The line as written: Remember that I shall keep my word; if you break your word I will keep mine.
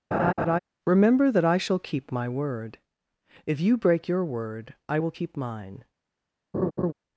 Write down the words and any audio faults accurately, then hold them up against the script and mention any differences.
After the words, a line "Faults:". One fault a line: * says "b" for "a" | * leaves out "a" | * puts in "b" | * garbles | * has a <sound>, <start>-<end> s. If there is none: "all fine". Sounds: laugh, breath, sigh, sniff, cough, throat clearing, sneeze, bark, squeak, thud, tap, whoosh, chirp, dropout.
Remember that I shall keep my word; if you break your word I will keep mine.
Faults:
* has a laugh, 0.1-0.6 s
* has a laugh, 6.5-6.9 s